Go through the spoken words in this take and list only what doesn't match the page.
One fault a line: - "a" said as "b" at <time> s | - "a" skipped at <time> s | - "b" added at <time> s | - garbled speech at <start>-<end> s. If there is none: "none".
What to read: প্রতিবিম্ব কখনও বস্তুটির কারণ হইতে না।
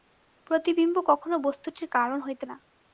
none